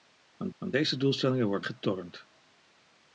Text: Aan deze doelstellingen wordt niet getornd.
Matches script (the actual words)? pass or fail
fail